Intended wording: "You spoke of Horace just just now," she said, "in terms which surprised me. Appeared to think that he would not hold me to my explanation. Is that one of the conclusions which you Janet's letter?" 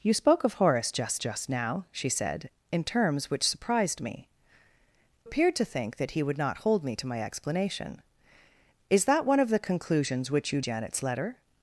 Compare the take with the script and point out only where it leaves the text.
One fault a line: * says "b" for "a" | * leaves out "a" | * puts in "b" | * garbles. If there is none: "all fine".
all fine